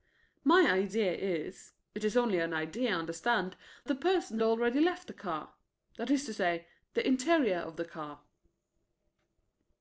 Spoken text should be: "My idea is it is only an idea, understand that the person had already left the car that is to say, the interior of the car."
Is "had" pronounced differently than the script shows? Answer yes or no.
yes